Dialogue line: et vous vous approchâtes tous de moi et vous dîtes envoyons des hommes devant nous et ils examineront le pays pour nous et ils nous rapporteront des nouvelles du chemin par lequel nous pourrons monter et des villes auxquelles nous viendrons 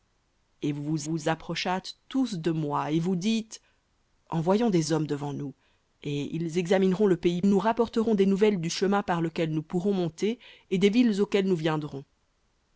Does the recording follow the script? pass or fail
fail